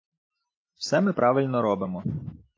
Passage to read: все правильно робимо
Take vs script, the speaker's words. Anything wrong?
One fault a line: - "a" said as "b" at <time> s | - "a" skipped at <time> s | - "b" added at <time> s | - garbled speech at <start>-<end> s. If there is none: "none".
- "ми" added at 1.0 s